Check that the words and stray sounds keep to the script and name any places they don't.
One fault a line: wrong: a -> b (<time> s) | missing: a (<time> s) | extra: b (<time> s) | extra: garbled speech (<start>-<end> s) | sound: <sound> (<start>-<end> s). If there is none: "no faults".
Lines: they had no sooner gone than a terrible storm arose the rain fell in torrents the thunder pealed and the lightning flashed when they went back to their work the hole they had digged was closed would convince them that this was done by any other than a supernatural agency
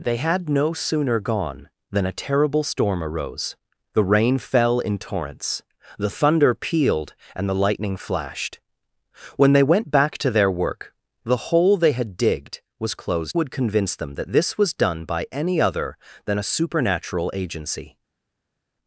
no faults